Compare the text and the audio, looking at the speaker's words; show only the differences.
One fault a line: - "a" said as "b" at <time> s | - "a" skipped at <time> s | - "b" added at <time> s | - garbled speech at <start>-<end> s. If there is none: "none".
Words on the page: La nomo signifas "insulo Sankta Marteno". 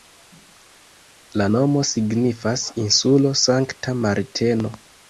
none